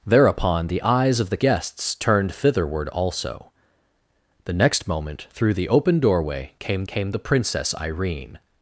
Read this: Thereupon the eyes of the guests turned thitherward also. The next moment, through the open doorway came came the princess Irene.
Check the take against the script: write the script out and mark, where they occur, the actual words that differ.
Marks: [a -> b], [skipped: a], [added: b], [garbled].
Thereupon the eyes of the guests turned thitherward also. The next moment, through the open doorway came came the princess Irene.